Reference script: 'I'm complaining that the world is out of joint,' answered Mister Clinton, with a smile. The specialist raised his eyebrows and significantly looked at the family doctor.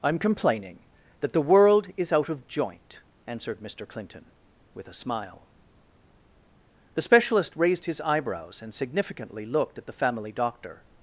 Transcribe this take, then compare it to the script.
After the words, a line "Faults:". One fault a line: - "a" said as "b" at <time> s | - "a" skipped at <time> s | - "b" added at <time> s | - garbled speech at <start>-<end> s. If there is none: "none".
'I'm complaining that the world is out of joint,' answered Mister Clinton, with a smile. The specialist raised his eyebrows and significantly looked at the family doctor.
Faults:
none